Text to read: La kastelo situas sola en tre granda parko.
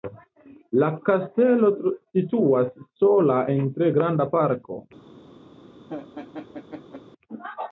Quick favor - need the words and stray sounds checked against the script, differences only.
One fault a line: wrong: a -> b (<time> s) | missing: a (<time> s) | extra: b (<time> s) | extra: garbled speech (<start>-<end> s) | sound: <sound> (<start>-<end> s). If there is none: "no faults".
sound: laugh (5.9-7.0 s)